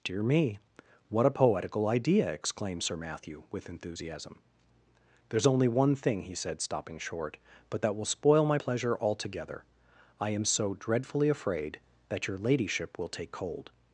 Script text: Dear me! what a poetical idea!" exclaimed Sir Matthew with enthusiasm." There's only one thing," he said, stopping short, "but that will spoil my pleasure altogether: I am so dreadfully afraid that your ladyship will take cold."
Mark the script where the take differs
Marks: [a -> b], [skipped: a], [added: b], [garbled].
Dear me! what a poetical idea!" exclaimed Sir Matthew with enthusiasm." There's only one thing," he said, stopping short, "but that will spoil my pleasure altogether: I am so dreadfully afraid that your ladyship will take cold."